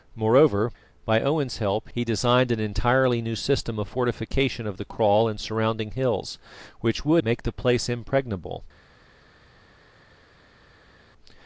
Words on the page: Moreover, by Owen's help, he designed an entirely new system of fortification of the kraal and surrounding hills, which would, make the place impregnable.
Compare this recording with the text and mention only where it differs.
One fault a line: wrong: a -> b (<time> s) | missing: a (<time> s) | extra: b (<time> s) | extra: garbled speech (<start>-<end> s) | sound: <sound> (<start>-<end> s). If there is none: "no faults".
no faults